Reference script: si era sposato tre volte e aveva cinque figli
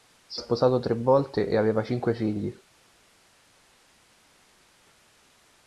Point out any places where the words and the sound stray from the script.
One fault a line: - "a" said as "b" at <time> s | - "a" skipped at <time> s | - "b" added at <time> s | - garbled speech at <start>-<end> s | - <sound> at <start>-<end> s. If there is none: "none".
- "era" skipped at 0.4 s